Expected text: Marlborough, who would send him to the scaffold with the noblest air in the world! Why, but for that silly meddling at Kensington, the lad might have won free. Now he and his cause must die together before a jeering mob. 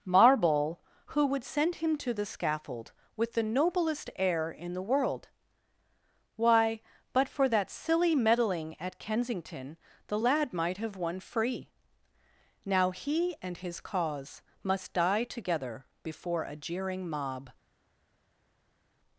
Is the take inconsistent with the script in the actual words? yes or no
yes